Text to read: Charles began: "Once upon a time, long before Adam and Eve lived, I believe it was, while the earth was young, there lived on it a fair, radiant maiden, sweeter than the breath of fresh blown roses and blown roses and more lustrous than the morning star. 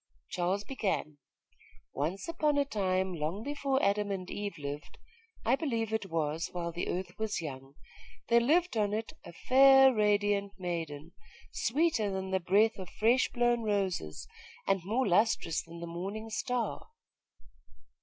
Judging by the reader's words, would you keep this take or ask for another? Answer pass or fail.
fail